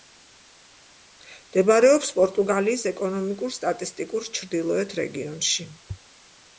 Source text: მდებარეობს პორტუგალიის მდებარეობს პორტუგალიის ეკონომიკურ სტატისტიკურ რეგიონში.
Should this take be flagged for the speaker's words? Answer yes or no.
yes